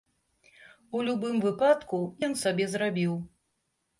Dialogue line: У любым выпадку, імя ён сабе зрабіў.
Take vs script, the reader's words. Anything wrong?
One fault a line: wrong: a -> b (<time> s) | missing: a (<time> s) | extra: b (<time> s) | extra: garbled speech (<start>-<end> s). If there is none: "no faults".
missing: імя (2.0 s)